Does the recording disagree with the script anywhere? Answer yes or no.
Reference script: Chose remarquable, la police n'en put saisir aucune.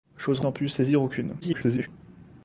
yes